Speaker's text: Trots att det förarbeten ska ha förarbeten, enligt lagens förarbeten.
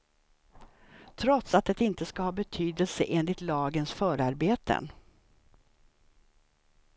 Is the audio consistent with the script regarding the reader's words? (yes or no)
no